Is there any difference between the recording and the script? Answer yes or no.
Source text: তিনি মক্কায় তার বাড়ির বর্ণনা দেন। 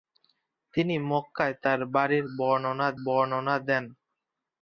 yes